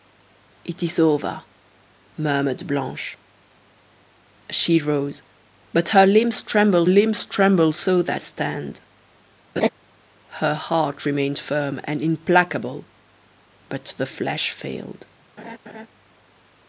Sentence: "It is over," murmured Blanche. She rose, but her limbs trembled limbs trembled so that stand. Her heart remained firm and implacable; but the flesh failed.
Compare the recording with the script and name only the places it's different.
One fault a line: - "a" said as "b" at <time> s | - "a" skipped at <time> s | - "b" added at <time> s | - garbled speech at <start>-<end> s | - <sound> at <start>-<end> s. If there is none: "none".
- laugh at 9.6-9.7 s
- laugh at 15.4-15.9 s